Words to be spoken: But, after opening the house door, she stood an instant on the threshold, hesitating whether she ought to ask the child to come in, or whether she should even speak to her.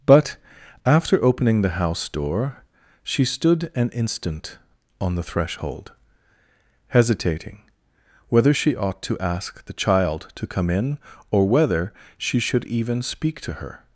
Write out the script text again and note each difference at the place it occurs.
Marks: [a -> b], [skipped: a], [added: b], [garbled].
But, after opening the house door, she stood an instant on the threshold, hesitating whether she ought to ask the child to come in, or whether she should even speak to her.